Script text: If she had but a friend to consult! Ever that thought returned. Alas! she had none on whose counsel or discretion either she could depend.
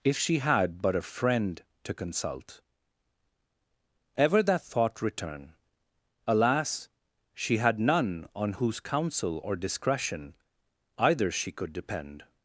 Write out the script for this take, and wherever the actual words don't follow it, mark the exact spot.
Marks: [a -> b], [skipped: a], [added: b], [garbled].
If she had but a friend to consult! Ever that thought [returned. -> return] Alas! she had none on whose counsel or discretion either she could depend.